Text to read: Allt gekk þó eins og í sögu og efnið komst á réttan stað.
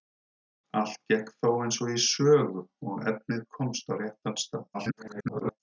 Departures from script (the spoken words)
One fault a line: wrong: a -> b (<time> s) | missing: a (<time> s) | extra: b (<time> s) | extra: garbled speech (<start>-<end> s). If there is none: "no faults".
extra: garbled speech (4.7-5.6 s)